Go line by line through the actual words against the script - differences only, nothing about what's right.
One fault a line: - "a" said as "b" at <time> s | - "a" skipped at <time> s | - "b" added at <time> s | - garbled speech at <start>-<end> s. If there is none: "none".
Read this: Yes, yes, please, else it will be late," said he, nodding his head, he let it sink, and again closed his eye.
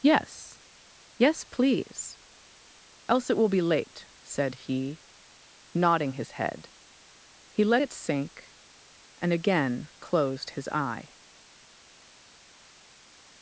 none